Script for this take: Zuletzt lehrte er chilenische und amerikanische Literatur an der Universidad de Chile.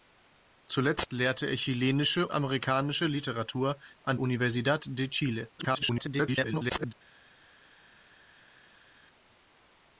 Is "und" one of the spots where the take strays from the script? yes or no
yes